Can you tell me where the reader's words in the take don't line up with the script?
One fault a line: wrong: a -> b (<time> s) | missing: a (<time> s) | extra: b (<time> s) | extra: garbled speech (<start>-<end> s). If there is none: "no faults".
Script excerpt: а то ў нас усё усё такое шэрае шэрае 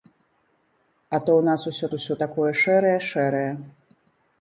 no faults